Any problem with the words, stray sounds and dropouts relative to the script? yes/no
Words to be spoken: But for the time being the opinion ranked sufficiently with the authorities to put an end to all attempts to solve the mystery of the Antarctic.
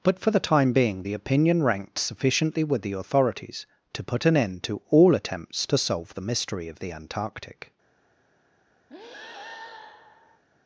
yes